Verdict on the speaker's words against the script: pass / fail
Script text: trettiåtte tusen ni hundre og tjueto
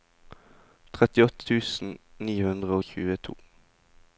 pass